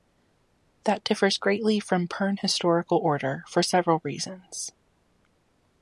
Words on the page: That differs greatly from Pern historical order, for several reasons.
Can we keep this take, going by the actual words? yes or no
yes